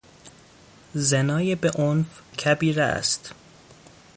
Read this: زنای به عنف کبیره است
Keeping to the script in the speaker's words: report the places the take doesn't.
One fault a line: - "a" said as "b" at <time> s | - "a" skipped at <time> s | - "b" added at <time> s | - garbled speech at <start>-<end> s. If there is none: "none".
none